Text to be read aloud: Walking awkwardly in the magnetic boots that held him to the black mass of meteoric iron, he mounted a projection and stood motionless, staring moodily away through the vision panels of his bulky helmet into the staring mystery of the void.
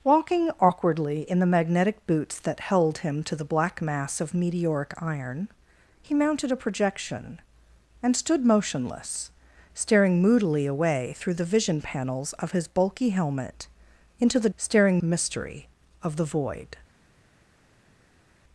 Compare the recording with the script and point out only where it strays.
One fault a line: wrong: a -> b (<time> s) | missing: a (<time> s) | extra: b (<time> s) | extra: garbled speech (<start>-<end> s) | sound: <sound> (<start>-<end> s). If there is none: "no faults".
no faults